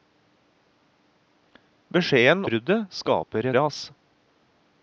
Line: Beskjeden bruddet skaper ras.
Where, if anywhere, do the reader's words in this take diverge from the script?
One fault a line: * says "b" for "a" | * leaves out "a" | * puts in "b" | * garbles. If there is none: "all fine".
all fine